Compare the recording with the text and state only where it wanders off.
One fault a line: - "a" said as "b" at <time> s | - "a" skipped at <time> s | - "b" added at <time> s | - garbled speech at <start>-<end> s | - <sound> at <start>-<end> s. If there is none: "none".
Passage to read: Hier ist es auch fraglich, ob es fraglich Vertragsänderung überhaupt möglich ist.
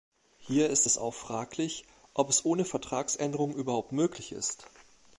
- "fraglich" said as "ohne" at 2.4 s